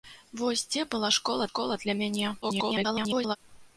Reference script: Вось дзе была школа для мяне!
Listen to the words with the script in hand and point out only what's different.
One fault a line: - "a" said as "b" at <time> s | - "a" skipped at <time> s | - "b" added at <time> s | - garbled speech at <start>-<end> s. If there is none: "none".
- "школа" added at 1.5 s
- garbled speech at 2.4-3.4 s